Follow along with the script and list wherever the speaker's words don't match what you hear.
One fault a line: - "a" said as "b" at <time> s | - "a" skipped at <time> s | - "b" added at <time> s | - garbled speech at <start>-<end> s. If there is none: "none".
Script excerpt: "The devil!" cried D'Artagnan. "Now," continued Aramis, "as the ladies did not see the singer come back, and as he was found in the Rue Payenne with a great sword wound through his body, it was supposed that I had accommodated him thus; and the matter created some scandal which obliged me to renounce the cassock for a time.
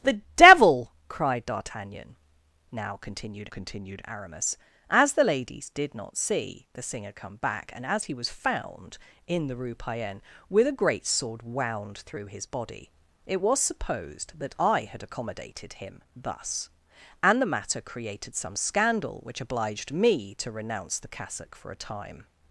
- "continued" added at 3.5 s